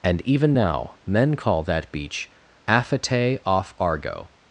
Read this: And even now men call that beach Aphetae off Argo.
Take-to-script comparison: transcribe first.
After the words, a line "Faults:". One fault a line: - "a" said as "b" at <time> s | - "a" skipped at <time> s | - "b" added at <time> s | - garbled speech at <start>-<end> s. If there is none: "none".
And even now men call that beach Aphetae off Argo.
Faults:
none